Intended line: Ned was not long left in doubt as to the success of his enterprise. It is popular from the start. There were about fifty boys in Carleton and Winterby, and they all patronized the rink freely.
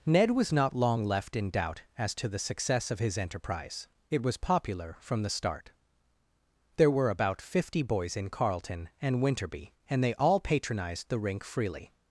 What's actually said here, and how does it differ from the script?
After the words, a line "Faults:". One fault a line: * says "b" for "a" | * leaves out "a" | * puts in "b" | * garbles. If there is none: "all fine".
Ned was not long left in doubt as to the success of his enterprise. It was popular from the start. There were about fifty boys in Carleton and Winterby, and they all patronized the rink freely.
Faults:
* says "was" for "is"